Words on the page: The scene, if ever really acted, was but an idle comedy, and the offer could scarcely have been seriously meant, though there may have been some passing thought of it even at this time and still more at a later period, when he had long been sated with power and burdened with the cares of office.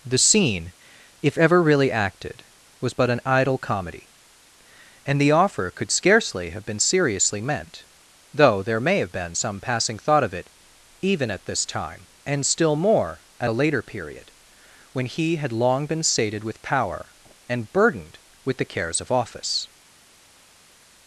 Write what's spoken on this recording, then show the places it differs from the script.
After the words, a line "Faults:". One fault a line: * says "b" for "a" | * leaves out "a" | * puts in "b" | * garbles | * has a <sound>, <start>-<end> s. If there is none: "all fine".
The scene, if ever really acted, was but an idle comedy, and the offer could scarcely have been seriously meant, though there may have been some passing thought of it even at this time and still more at a later period, when he had long been sated with power and burdened with the cares of office.
Faults:
all fine